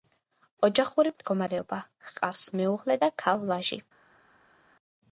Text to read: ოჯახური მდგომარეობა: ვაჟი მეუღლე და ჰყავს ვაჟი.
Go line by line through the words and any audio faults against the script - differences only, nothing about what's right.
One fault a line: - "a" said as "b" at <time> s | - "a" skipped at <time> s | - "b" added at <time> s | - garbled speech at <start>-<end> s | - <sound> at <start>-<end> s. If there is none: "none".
- "ვაჟი" said as "ჰყავს" at 2.1 s
- "ჰყავს" said as "ქალ" at 3.3 s